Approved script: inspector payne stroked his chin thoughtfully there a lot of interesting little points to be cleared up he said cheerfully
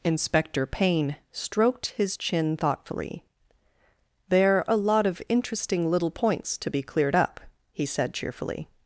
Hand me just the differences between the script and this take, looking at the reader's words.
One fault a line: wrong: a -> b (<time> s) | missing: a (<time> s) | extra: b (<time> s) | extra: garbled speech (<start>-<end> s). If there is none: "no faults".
no faults